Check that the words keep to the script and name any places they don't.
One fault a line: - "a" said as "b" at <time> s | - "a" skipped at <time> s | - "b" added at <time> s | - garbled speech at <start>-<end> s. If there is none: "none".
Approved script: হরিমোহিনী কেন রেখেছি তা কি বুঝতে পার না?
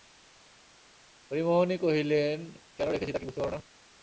- "কহিলেন" added at 1.8 s